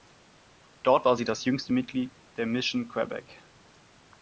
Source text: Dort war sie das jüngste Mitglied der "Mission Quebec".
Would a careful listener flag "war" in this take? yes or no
no